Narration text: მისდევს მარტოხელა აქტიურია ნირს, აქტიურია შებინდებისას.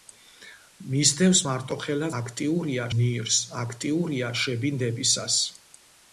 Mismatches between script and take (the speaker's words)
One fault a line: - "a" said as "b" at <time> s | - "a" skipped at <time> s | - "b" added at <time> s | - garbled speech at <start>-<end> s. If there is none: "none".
none